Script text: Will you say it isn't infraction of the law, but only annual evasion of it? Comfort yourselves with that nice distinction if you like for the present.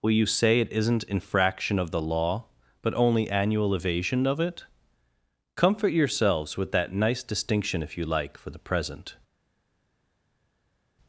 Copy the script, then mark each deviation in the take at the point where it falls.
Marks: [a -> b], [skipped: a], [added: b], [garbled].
Will you say it isn't infraction of the law, but only annual evasion of it? Comfort yourselves with that nice distinction if you like for the present.